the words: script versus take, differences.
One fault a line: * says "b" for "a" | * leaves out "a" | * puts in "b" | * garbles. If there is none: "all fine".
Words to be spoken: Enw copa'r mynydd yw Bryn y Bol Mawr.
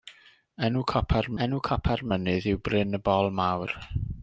* puts in "enw copa'r"